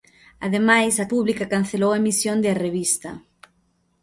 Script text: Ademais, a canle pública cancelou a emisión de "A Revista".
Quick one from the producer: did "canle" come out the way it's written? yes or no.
no